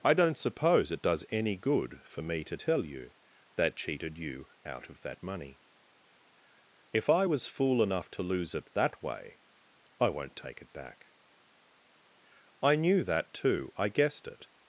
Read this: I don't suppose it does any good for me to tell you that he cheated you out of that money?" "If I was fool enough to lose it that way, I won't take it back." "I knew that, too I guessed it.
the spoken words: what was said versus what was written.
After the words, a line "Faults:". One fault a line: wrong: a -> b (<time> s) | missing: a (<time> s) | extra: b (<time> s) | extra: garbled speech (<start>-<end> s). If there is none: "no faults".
I don't suppose it does any good for me to tell you that cheated you out of that money?" "If I was fool enough to lose it that way, I won't take it back." "I knew that, too I guessed it.
Faults:
missing: he (3.7 s)